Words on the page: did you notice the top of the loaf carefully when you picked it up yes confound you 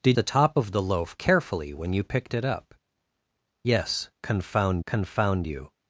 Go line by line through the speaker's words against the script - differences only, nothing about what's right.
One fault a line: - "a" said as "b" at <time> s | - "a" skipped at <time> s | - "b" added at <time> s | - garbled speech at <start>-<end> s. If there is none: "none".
- "you notice" skipped at 0.2 s
- "confound" added at 4.9 s